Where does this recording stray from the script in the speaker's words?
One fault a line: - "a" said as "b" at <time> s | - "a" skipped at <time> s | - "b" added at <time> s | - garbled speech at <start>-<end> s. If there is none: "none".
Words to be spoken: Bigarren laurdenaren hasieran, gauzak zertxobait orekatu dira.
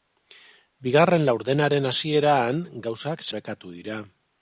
- "zertxobait" skipped at 3.2 s